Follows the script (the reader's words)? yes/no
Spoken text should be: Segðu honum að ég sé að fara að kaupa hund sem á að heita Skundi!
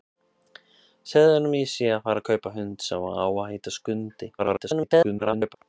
no